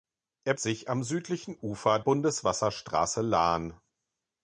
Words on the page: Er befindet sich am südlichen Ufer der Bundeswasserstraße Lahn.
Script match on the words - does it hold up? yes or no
no